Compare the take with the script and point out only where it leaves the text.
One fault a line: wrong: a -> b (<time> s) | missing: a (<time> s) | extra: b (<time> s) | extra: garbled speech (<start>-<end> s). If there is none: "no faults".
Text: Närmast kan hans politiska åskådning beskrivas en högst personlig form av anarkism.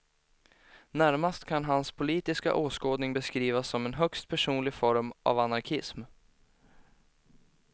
extra: som (3.7 s)